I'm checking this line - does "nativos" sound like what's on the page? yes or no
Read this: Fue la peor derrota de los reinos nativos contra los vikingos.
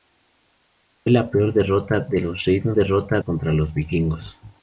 no